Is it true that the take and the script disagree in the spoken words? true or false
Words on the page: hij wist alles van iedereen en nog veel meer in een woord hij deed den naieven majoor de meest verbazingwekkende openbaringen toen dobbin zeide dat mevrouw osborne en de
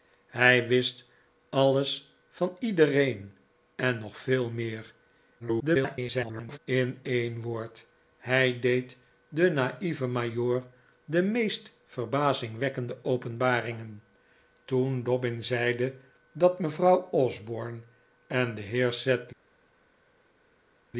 true